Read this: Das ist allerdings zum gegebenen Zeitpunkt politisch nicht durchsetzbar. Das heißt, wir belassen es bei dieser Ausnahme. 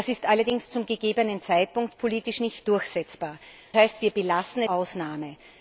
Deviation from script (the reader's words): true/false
true